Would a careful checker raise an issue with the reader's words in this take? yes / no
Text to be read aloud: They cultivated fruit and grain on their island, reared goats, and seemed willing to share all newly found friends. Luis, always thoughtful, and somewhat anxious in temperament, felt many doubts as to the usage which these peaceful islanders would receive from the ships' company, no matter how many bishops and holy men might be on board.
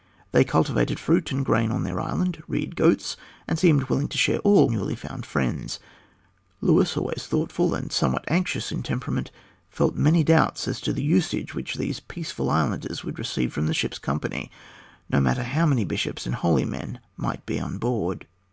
no